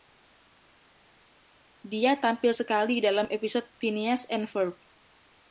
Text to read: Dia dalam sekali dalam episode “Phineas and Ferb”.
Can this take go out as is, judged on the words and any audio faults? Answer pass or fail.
fail